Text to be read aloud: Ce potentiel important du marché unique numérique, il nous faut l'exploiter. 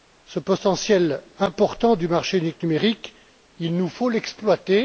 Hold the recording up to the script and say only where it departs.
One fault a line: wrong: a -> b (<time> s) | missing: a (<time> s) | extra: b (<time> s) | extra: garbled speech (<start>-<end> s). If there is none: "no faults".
no faults